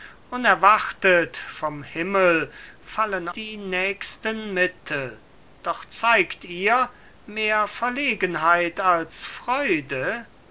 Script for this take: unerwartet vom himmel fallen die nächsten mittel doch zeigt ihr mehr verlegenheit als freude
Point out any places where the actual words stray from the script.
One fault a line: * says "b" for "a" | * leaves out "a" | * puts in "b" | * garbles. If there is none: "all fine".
all fine